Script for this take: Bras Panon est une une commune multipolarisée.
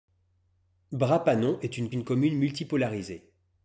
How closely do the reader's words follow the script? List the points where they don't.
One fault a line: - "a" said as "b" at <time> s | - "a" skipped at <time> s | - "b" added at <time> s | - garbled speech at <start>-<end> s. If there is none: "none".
none